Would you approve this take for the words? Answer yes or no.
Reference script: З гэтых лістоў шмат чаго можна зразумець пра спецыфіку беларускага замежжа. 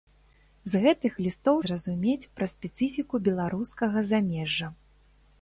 no